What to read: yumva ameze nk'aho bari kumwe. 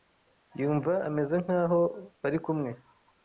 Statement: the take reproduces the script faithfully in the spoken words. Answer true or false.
true